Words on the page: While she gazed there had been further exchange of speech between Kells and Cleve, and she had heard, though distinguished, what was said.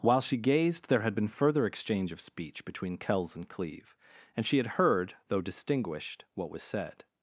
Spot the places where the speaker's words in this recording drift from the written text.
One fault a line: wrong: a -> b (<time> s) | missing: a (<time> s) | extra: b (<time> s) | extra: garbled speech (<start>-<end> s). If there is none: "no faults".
no faults